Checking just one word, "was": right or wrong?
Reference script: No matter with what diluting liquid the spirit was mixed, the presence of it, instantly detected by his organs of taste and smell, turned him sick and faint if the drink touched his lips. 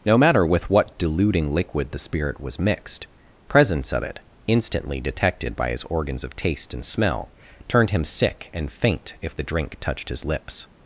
right